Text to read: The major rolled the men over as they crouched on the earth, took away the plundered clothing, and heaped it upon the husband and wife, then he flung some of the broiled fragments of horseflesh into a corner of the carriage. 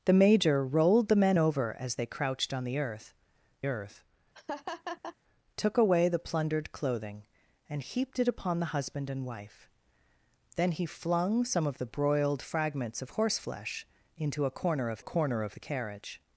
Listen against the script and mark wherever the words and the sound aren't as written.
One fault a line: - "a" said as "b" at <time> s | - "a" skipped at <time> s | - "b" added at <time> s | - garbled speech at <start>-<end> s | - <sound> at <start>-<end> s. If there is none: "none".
- "earth" added at 3.7 s
- laugh at 4.3-5.2 s
- "corner of" added at 15.0 s